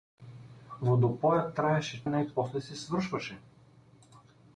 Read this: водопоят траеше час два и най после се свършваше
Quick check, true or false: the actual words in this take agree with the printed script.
false